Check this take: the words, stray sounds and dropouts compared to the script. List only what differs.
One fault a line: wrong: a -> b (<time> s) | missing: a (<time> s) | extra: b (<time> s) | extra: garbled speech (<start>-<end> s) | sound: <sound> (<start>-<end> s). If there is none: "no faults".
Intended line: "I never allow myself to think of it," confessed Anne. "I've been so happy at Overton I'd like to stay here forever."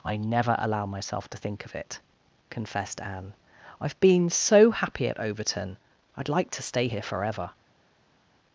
no faults